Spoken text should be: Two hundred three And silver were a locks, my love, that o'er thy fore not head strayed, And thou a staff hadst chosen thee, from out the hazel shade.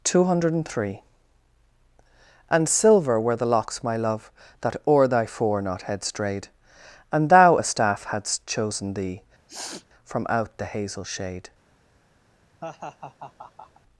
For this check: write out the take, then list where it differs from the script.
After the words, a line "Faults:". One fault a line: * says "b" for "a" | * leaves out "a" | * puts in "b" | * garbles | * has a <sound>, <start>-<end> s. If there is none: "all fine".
Two hundred three And silver were the locks, my love, that o'er thy fore not head strayed, And thou a staff hadst chosen thee, from out the hazel shade.
Faults:
* says "the" for "a"
* has a sniff, 9.5-9.9 s
* has a laugh, 12.6-13.8 s